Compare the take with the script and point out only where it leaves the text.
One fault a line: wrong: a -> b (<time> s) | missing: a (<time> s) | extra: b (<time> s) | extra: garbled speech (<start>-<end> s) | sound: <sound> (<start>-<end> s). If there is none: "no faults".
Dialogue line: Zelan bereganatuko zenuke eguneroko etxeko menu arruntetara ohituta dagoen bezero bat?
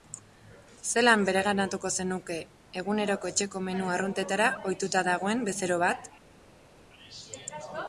no faults